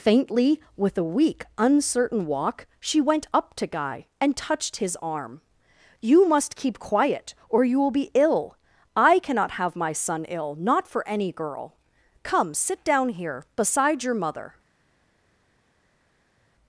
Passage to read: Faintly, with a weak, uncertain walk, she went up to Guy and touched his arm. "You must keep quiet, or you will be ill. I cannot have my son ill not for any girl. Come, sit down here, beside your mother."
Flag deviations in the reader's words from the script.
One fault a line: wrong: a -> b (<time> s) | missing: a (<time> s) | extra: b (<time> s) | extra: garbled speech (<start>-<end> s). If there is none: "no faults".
no faults